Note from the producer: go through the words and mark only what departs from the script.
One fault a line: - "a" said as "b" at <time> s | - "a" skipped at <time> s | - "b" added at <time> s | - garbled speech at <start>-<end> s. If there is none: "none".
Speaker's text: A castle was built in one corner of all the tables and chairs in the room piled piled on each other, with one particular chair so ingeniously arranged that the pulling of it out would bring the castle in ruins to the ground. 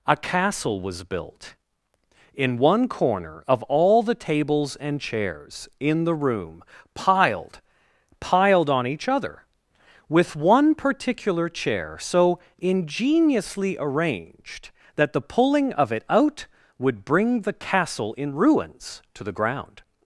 none